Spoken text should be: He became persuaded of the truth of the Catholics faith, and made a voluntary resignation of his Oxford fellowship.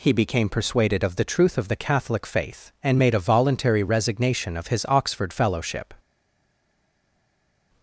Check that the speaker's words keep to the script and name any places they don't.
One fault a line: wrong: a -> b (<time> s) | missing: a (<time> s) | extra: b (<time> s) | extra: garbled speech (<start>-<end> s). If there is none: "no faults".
wrong: Catholics -> Catholic (1.8 s)